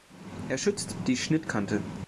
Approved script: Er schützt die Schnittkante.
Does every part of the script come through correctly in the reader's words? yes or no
yes